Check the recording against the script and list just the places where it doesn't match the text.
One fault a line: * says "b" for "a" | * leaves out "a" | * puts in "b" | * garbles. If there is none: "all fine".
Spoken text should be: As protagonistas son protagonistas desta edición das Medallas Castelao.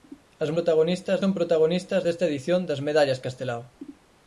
all fine